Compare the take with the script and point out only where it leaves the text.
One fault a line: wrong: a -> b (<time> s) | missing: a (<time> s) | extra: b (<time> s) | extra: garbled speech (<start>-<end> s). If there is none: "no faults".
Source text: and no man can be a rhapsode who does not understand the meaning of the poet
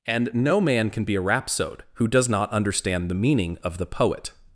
no faults